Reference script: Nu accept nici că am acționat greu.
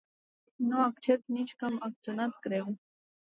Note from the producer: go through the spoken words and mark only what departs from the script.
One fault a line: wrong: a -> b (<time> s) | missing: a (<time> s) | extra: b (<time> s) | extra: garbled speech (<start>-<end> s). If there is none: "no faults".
no faults